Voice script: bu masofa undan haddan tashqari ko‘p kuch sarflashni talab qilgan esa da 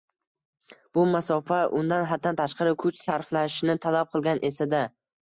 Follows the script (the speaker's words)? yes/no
no